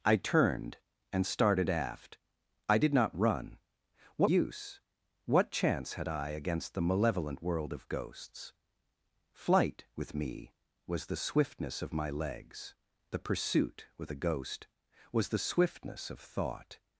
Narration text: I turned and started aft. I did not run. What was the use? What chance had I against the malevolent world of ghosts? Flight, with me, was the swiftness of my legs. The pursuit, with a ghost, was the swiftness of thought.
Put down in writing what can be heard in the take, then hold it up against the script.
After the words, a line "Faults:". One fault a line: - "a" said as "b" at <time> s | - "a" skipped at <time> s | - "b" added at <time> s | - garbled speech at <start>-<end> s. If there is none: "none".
I turned and started aft. I did not run. What use? What chance had I against the malevolent world of ghosts? Flight, with me, was the swiftness of my legs. The pursuit, with a ghost, was the swiftness of thought.
Faults:
- "was the" skipped at 4.3 s